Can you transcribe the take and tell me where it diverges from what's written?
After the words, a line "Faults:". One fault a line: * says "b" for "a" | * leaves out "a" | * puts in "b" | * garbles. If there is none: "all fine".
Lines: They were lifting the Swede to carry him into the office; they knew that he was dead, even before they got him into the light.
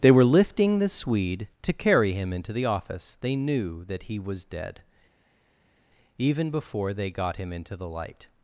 They were lifting the Swede to carry him into the office; they knew that he was dead, even before they got him into the light.
Faults:
all fine